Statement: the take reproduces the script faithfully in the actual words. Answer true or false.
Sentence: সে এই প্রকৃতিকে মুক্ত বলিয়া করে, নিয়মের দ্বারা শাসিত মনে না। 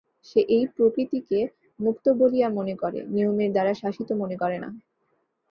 false